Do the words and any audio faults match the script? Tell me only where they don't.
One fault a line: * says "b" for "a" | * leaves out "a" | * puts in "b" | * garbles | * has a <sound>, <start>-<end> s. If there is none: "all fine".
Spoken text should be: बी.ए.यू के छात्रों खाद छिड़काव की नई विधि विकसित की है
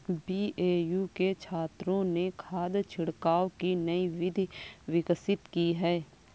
* puts in "ने"